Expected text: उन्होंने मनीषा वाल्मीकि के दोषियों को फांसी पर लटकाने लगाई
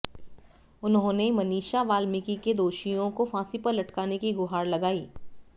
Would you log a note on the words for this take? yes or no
yes